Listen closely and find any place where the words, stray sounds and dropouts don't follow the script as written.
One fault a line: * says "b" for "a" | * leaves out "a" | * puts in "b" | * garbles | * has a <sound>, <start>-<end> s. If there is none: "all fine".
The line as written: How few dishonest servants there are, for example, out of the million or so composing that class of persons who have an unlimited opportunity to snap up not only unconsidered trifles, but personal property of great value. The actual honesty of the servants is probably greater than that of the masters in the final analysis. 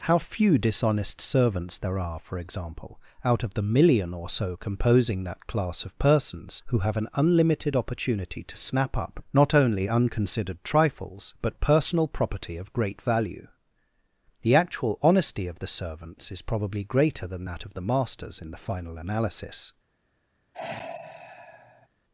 * has a sigh, 20.5-21.9 s